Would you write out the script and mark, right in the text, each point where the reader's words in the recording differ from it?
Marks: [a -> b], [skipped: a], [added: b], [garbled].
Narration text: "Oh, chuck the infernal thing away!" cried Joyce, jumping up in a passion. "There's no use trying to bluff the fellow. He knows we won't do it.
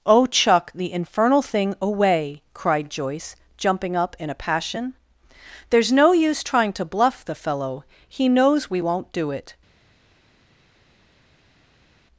"Oh, chuck the infernal thing away!" cried Joyce, jumping up in a passion. "There's no use trying to bluff the fellow. He knows we won't do it.